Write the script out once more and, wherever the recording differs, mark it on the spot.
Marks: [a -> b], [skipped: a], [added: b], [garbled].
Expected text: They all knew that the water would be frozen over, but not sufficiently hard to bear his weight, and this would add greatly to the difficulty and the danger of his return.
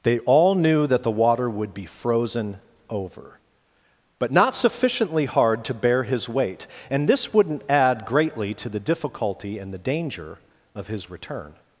They all knew that the water would be frozen over, but not sufficiently hard to bear his weight, and this [would -> wouldn't] add greatly to the difficulty and the danger of his return.